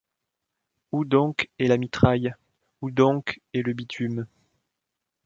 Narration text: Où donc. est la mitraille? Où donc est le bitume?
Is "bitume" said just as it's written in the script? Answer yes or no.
yes